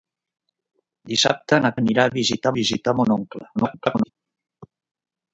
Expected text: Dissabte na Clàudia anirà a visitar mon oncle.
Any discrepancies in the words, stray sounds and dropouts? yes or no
yes